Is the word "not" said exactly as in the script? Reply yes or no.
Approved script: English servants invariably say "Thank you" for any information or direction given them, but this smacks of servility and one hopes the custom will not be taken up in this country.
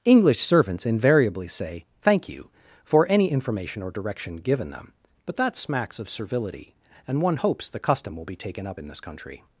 no